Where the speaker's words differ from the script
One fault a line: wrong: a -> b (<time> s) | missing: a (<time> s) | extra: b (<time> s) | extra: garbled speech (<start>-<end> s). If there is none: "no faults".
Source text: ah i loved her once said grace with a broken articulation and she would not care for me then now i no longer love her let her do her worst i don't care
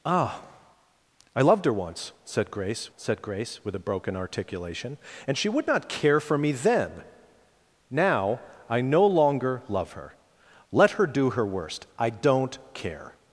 extra: said grace (3.0 s)